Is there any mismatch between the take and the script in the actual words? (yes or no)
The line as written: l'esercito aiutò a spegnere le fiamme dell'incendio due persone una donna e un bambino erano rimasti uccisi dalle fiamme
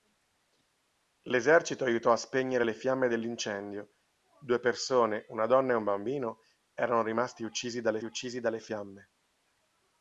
yes